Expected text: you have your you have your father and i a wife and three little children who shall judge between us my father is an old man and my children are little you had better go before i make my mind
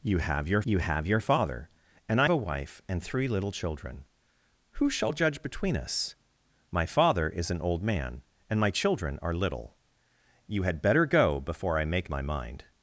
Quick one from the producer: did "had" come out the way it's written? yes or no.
yes